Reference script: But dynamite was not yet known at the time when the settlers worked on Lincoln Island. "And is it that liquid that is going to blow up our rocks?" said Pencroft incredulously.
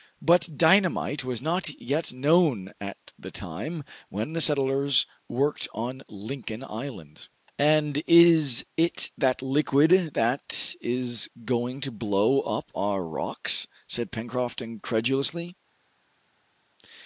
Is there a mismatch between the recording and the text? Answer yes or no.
no